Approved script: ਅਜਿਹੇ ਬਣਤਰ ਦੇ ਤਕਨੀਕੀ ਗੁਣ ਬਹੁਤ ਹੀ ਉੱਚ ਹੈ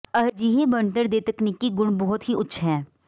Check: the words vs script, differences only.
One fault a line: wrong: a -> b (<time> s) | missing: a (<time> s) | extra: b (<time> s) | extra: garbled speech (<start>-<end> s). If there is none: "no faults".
no faults